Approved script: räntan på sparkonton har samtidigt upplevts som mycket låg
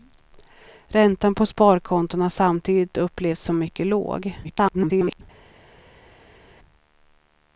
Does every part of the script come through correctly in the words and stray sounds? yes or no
no